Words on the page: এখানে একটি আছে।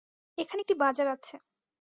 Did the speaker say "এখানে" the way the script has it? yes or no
yes